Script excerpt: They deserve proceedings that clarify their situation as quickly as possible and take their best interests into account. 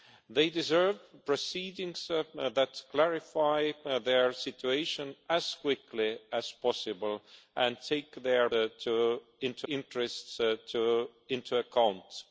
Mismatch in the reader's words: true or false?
true